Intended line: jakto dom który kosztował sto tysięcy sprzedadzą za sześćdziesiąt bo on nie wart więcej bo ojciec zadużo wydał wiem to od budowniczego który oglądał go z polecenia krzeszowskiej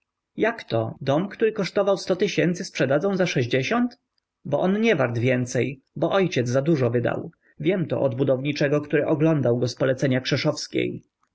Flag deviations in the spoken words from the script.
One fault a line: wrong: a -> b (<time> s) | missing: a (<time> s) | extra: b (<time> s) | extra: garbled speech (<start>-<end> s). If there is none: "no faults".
no faults